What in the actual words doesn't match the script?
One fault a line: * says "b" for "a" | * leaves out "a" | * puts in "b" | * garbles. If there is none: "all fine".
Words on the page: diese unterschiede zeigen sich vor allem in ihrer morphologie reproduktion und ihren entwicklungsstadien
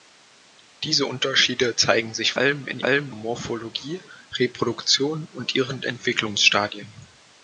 * leaves out "vor"
* says "allem" for "ihrer"